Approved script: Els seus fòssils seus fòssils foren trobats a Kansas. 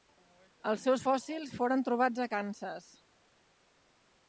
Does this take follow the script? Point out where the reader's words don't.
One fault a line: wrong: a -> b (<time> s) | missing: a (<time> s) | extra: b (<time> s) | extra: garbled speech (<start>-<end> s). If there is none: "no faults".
missing: seus fòssils (1.6 s)